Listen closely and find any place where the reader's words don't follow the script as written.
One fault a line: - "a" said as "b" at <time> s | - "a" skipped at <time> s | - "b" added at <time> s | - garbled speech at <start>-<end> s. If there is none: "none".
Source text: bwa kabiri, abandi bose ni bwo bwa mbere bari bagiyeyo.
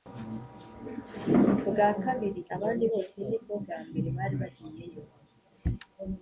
none